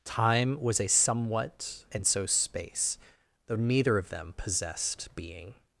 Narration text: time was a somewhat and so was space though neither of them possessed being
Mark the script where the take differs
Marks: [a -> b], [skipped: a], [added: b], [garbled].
time was a somewhat and so [skipped: was] space though neither of them possessed being